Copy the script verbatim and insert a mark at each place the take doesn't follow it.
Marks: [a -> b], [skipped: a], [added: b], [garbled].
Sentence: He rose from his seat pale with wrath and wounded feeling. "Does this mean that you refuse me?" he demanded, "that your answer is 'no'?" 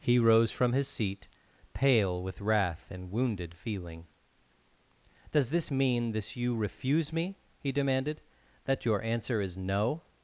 He rose from his seat pale with wrath and wounded feeling. "Does this mean [that -> this] you refuse me?" he demanded, "that your answer is 'no'?"